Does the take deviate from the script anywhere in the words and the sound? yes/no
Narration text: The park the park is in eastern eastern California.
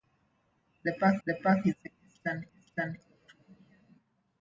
no